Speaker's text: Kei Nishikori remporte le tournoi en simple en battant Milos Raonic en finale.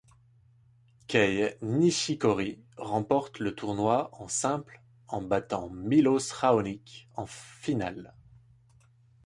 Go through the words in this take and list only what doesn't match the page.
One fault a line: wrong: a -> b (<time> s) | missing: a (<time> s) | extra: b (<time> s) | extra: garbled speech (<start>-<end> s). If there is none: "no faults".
no faults